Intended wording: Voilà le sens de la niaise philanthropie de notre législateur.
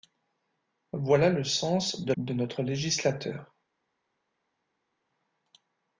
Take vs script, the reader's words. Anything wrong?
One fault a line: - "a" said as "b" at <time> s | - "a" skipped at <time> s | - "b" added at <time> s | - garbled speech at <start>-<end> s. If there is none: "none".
- "la niaise philanthropie" skipped at 2.1 s